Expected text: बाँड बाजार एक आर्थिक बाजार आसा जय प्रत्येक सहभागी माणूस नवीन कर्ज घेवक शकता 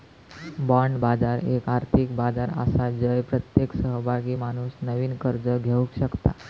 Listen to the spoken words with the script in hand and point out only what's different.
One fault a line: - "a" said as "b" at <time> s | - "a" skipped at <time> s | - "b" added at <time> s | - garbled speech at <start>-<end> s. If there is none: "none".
none